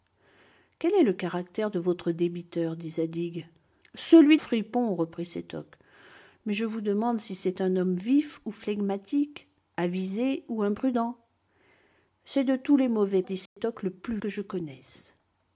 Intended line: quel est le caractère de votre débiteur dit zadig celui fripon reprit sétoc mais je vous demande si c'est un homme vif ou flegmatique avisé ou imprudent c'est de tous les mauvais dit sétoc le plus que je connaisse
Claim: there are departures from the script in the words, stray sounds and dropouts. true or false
true